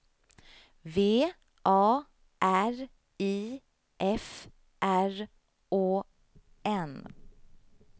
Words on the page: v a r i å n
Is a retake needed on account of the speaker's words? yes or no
yes